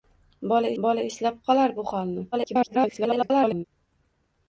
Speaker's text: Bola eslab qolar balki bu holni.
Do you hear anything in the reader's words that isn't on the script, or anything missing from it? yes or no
yes